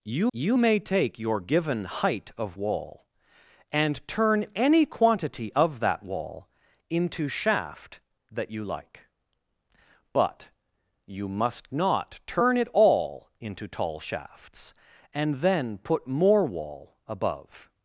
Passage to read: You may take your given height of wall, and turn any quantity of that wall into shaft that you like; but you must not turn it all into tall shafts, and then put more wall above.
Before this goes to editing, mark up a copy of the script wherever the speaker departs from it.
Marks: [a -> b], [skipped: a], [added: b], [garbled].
You [added: you] may take your given height of wall, and turn any quantity of that wall into shaft that you like; but you must not turn it all into tall shafts, and then put more wall above.